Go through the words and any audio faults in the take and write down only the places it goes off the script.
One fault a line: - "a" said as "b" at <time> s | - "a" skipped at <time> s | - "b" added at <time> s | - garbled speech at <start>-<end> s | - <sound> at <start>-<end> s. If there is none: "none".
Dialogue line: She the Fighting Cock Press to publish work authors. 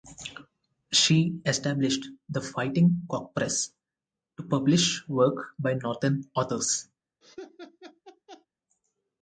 - "established" added at 1.4 s
- "by northern" added at 5.6 s
- laugh at 7.2-8.5 s